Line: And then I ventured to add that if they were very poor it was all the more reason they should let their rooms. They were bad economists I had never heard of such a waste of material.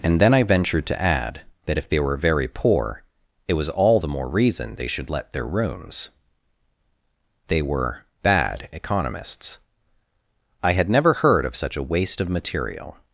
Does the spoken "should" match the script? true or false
true